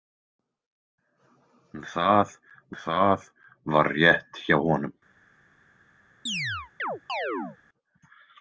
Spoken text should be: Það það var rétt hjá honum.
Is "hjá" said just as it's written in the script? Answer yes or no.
yes